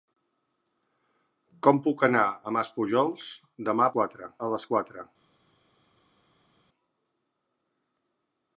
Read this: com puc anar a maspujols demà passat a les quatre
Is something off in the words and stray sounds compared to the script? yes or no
yes